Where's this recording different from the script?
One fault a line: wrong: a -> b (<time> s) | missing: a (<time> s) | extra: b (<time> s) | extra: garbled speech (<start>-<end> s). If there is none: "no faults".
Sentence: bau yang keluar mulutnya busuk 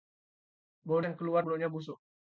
no faults